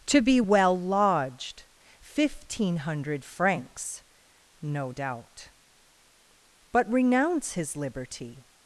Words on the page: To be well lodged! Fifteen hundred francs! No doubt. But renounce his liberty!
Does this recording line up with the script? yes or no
yes